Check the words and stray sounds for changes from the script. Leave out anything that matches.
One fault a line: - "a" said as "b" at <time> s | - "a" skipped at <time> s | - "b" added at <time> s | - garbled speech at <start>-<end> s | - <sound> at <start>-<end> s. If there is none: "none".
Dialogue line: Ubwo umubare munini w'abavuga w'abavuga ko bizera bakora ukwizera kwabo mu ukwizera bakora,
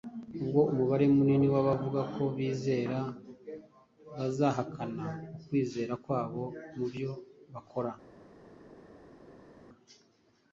- "w'abavuga" skipped at 2.0 s
- "bakora" said as "bazahakana" at 4.2 s
- "ukwizera" said as "byo" at 6.9 s